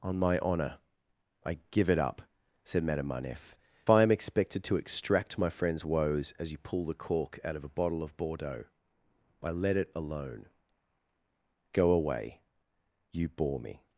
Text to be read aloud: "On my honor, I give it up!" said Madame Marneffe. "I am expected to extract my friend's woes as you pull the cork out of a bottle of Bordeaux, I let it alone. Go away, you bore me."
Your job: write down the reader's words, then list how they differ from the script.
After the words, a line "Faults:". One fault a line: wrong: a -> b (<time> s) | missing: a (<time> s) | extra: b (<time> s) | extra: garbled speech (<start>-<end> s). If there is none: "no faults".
"On my honor, I give it up!" said Madame Marneffe. "I am expected to extract my friend's woes as you pull the cork out of a bottle of Bordeaux, I let it alone. Go away, you bore me."
Faults:
no faults